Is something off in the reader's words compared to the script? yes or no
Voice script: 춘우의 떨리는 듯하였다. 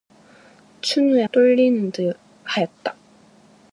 no